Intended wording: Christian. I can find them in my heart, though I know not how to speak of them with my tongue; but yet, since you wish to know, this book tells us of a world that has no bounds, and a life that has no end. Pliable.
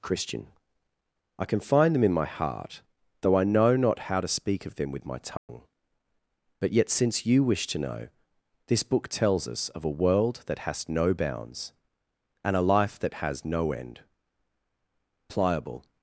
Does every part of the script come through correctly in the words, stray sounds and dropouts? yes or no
no